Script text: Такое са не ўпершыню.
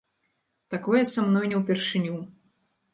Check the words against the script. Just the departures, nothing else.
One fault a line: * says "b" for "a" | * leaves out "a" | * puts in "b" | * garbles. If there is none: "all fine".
* puts in "мной"